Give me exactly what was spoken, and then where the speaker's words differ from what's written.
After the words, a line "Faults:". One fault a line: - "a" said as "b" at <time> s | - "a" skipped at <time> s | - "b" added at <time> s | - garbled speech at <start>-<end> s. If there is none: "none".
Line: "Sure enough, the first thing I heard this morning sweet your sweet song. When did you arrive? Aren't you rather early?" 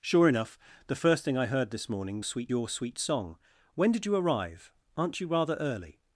"Sure enough, the first thing I heard this morning sweet your sweet song. When did you arrive? Aren't you rather early?"
Faults:
none